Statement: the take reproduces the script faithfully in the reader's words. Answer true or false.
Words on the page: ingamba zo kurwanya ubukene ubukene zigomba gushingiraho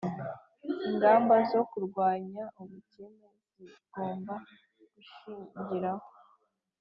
false